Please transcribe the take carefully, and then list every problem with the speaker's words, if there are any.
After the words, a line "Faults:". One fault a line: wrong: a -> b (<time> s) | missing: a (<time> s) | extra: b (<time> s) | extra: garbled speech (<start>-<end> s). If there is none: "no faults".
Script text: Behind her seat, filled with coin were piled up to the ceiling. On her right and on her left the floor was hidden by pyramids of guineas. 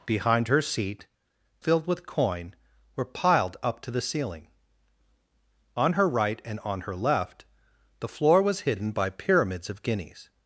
Behind her seat, filled with coin were piled up to the ceiling. On her right and on her left the floor was hidden by pyramids of guineas.
Faults:
no faults